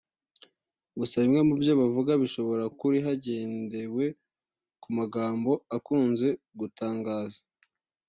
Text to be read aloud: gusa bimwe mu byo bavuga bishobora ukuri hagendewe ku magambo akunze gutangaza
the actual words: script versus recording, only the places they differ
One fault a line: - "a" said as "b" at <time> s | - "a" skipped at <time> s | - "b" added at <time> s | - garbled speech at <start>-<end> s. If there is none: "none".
none